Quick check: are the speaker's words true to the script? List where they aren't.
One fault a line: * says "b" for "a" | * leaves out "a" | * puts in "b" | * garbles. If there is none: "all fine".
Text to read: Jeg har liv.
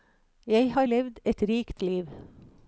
* puts in "levd et rikt"